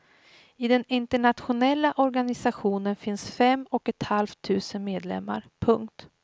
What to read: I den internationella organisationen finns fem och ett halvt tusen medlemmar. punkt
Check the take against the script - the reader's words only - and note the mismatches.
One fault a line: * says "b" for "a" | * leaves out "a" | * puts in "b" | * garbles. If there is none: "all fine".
all fine